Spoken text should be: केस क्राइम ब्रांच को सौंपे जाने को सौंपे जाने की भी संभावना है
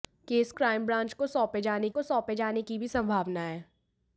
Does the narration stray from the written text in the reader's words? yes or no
no